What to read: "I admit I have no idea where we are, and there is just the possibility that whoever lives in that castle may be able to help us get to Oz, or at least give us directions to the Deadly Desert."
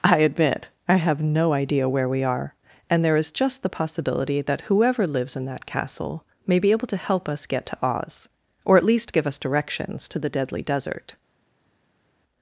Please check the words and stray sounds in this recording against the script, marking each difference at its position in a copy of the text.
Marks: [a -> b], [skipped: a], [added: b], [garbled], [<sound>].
"I admit I have no idea where we are, and there is just the possibility that whoever lives in that castle may be able to help us get to Oz, or at least give us directions to the Deadly Desert."